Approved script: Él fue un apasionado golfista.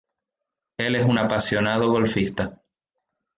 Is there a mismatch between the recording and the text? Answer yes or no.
yes